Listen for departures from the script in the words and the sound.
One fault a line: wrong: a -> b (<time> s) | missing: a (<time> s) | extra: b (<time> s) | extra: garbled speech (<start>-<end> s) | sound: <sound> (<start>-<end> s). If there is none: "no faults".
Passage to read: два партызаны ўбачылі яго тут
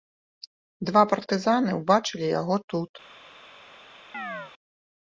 sound: chirp (4.1-4.5 s)